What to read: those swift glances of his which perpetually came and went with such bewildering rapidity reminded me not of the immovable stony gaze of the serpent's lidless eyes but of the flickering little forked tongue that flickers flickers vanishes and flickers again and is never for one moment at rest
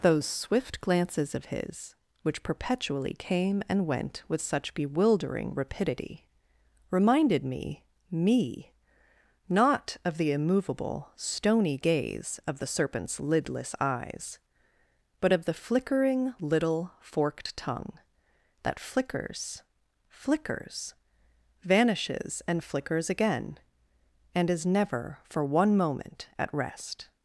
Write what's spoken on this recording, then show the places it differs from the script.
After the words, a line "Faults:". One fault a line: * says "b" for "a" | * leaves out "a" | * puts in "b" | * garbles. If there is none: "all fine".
those swift glances of his which perpetually came and went with such bewildering rapidity reminded me me not of the immovable stony gaze of the serpent's lidless eyes but of the flickering little forked tongue that flickers flickers vanishes and flickers again and is never for one moment at rest
Faults:
* puts in "me"